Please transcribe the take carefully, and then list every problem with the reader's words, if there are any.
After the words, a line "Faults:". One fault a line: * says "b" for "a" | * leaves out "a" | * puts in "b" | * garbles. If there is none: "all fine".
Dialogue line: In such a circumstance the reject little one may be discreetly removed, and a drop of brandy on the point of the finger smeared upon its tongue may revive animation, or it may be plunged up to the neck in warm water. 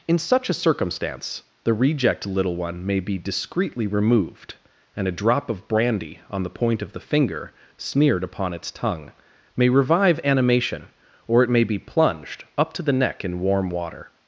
In such a circumstance the reject little one may be discreetly removed, and a drop of brandy on the point of the finger smeared upon its tongue may revive animation, or it may be plunged up to the neck in warm water.
Faults:
all fine